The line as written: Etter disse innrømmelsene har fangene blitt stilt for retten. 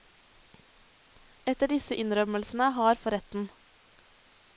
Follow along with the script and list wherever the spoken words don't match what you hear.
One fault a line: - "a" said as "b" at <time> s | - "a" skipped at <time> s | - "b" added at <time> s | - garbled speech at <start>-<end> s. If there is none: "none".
- "fangene blitt stilt" skipped at 3.0 s